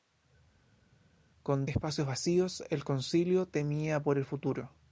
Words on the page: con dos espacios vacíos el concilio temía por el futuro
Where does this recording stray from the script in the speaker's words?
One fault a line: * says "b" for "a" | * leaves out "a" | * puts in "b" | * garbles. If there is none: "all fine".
* leaves out "dos"